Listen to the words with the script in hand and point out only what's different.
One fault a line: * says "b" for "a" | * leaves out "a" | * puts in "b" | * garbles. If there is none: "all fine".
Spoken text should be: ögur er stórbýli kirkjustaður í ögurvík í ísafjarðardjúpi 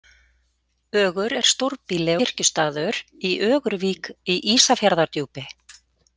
all fine